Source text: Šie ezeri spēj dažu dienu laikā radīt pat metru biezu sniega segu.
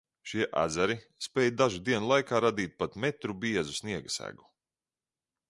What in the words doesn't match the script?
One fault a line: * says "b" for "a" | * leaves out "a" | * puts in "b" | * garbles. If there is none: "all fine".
all fine